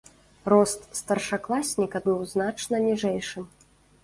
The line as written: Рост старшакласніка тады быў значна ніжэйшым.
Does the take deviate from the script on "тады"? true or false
true